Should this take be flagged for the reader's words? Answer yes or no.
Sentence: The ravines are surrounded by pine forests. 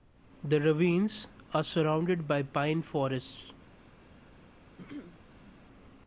no